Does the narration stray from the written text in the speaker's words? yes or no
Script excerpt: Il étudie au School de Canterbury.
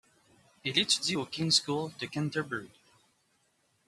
yes